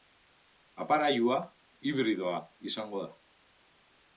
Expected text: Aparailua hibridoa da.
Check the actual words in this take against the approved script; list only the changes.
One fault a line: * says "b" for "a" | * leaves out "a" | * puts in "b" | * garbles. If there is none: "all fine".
* puts in "izango"